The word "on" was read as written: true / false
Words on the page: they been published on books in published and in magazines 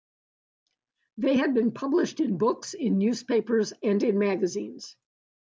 false